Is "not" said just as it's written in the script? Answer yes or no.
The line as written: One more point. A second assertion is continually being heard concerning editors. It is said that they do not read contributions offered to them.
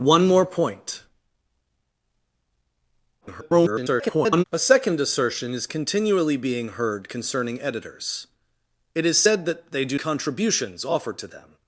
no